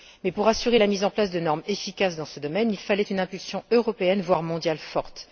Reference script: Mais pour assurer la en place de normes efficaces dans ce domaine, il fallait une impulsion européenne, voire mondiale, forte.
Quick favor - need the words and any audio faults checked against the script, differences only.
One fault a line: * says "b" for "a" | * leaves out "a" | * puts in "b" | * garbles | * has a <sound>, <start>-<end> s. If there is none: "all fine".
* puts in "mise"